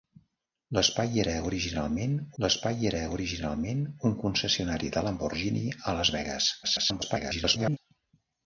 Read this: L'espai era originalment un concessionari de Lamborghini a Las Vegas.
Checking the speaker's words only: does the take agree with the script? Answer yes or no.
no